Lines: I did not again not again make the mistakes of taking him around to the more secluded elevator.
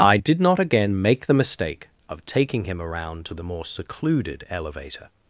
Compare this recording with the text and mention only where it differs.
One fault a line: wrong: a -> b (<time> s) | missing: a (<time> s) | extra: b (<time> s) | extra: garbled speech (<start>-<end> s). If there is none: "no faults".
missing: not again (1.0 s)
wrong: mistakes -> mistake (1.3 s)